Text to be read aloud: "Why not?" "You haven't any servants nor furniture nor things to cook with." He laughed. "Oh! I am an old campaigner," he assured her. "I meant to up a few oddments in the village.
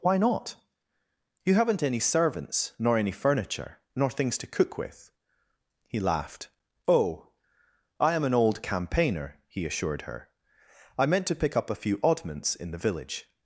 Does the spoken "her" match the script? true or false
true